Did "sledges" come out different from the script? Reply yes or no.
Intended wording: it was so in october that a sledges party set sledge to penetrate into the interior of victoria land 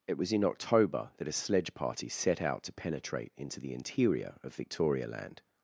yes